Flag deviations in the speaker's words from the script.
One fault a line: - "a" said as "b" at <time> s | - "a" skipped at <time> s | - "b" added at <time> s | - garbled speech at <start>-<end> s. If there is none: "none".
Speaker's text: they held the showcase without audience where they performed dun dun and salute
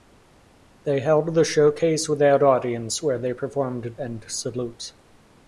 - "dun dun" skipped at 4.0 s